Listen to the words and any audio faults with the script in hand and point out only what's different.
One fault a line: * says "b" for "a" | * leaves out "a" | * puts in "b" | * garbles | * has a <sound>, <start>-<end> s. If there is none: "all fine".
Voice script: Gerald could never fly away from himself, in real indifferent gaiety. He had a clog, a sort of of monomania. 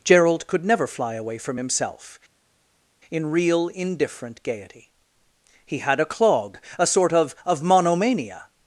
all fine